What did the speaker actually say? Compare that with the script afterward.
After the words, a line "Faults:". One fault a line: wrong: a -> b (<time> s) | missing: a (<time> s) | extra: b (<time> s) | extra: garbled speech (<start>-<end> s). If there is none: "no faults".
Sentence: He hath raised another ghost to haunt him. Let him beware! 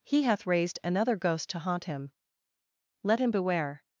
He hath raised another ghost to haunt him. Let him beware!
Faults:
no faults